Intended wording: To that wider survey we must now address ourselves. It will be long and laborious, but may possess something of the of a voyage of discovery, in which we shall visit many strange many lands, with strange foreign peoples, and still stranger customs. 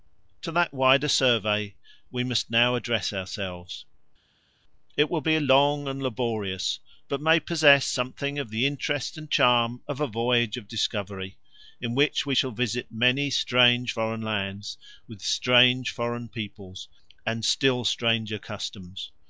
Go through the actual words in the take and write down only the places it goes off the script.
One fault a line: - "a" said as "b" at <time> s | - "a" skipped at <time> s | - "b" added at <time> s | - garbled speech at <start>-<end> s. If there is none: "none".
- "interest and charm" added at 8.7 s
- "many" said as "foreign" at 13.9 s